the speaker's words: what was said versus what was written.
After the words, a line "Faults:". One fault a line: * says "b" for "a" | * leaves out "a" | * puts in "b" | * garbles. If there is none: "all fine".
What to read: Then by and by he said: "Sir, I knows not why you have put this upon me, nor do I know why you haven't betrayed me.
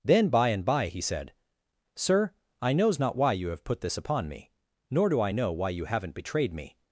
Then by and by he said: "Sir, I knows not why you have put this upon me, nor do I know why you haven't betrayed me.
Faults:
all fine